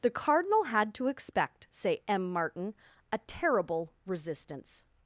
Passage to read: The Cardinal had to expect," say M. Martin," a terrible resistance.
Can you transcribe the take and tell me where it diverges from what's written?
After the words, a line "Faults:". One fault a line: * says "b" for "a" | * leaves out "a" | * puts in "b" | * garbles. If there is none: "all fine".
The Cardinal had to expect," say M. Martin," a terrible resistance.
Faults:
all fine